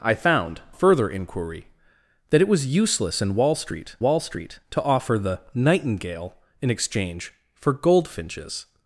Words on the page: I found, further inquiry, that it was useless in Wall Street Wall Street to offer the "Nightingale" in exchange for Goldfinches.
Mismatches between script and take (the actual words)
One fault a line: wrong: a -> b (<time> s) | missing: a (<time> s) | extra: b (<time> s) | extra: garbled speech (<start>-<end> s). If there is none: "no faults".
no faults